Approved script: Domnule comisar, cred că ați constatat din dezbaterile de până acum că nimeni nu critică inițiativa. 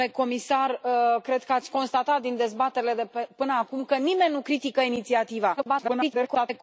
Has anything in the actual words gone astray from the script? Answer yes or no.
yes